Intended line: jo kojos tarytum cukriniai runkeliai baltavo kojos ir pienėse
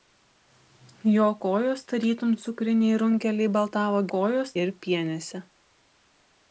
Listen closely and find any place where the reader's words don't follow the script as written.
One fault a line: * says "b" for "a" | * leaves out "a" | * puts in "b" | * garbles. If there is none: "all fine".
all fine